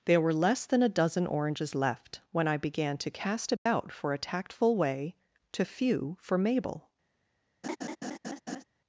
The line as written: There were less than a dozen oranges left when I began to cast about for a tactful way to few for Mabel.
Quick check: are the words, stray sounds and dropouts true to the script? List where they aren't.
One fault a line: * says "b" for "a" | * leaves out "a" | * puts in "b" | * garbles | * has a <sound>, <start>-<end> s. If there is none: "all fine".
* has a dropout, 3.6-3.7 s
* has a laugh, 7.6-8.6 s